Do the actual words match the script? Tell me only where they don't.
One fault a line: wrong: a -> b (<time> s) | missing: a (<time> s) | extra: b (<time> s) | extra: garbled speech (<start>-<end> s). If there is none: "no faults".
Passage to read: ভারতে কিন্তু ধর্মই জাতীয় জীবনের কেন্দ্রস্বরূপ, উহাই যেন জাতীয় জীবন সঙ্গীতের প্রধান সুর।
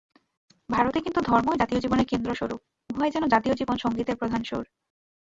no faults